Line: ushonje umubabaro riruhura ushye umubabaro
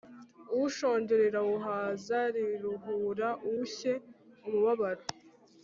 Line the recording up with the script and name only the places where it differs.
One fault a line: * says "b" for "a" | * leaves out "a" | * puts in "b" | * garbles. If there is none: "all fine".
* says "rirawuhaza" for "umubabaro"